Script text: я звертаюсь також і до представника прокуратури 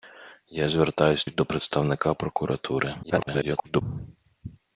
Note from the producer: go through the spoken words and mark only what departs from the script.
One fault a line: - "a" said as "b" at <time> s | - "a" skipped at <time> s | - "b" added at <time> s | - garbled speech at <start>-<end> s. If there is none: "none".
- "також" skipped at 1.2 s
- garbled speech at 3.0-3.8 s